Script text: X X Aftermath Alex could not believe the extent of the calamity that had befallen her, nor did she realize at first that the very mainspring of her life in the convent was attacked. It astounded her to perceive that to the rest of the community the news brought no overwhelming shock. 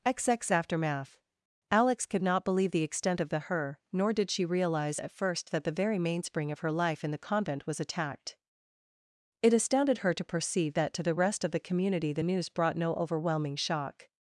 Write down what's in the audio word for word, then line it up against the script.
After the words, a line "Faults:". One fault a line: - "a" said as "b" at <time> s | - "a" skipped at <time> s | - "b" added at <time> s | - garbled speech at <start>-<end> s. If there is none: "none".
X X Aftermath Alex could not believe the extent of the her, nor did she realize at first that the very mainspring of her life in the convent was attacked. It astounded her to perceive that to the rest of the community the news brought no overwhelming shock.
Faults:
- "calamity that had befallen" skipped at 3.4 s